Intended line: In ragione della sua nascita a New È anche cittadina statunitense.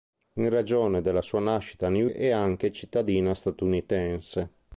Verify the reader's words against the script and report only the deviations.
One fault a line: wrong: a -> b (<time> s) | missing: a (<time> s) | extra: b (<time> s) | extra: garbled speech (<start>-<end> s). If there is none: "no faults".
no faults